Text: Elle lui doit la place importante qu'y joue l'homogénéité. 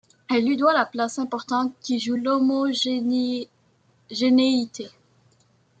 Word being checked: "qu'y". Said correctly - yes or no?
yes